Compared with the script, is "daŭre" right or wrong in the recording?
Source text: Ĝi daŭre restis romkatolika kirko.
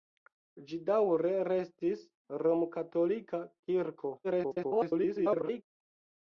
right